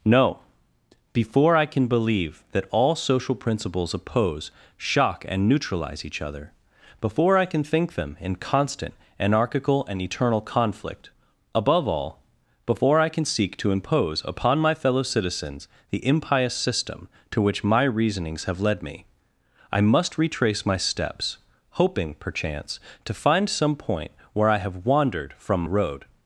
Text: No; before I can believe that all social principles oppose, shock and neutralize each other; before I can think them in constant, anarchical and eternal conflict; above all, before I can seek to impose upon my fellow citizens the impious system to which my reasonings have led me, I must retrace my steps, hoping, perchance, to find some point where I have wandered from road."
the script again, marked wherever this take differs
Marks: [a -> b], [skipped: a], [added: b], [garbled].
No; before I can believe that all social principles oppose, shock and neutralize each other; before I can think them in constant, anarchical and eternal conflict; above all, before I can seek to impose upon my fellow citizens the impious system to which my reasonings have led me, I must retrace my steps, hoping, perchance, to find some point where I have wandered from road."